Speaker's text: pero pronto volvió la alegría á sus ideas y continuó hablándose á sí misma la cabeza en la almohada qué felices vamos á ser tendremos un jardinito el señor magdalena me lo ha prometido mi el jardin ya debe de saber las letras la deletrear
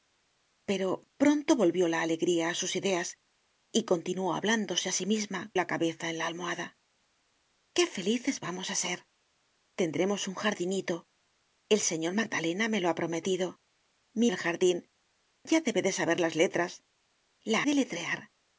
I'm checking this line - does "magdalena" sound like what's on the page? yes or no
yes